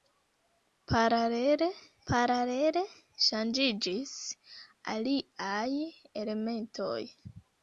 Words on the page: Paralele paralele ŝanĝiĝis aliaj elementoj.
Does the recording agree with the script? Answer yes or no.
yes